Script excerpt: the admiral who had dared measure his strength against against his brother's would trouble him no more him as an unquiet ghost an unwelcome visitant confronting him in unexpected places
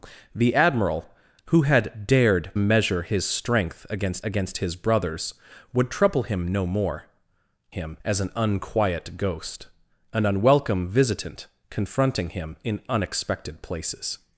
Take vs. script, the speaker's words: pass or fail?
pass